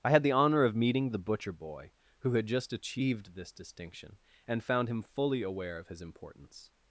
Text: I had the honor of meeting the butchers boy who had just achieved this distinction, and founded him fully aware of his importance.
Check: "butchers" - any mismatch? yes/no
yes